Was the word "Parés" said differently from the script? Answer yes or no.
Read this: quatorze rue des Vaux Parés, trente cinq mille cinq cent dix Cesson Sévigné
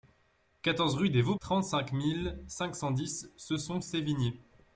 yes